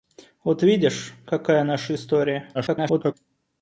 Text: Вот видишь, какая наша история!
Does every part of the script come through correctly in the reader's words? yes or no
no